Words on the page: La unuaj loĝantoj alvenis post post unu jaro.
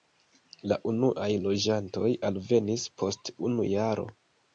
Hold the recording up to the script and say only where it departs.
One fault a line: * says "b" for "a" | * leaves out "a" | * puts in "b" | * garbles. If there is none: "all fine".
* leaves out "post"